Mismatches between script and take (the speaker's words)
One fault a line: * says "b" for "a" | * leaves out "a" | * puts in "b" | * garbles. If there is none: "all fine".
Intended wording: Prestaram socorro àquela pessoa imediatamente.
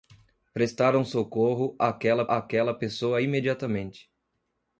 * puts in "àquela"